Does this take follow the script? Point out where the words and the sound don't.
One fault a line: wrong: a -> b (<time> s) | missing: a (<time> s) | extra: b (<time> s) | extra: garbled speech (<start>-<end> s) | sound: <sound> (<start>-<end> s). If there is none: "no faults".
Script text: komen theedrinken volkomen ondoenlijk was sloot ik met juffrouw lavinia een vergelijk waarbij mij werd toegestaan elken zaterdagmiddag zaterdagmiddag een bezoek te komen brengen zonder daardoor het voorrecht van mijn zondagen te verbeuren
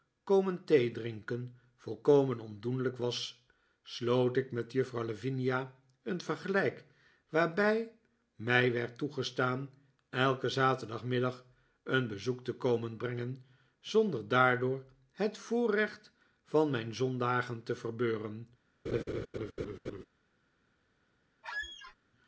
missing: zaterdagmiddag (11.5 s)
sound: laugh (18.9-20.0 s)
sound: squeak (21.4-22.0 s)